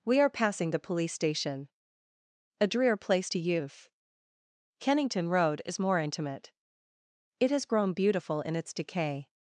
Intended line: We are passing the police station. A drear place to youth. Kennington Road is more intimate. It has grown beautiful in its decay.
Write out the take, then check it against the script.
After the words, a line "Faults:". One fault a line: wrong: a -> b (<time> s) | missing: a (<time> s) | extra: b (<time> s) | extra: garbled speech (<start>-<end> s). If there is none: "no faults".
We are passing the police station. A drear place to youth. Kennington Road is more intimate. It has grown beautiful in its decay.
Faults:
no faults